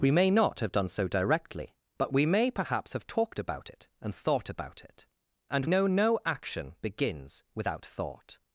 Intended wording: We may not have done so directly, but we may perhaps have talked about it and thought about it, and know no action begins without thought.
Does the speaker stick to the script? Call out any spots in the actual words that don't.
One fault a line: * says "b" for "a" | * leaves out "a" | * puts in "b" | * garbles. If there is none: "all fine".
all fine